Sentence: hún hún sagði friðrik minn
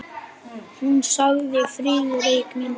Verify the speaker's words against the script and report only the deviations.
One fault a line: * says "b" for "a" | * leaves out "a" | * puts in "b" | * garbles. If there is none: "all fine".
* leaves out "hún"